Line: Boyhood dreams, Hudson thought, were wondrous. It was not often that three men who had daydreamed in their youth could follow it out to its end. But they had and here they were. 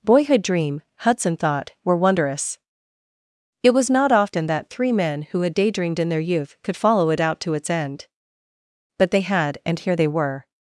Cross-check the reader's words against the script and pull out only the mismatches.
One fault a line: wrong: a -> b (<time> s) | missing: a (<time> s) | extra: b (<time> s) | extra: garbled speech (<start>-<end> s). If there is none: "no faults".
wrong: dreams -> dream (0.4 s)